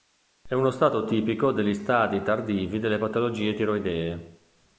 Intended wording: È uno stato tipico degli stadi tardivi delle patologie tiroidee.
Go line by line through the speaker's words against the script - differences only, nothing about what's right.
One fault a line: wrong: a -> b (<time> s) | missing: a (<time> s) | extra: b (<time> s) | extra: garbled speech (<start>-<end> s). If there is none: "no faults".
no faults